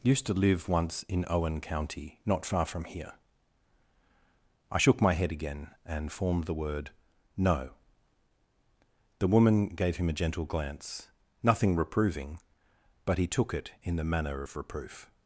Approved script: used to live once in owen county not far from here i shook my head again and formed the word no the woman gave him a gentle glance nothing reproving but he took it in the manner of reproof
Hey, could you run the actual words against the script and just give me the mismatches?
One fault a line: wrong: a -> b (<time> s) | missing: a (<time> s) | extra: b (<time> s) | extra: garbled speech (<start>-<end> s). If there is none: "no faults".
no faults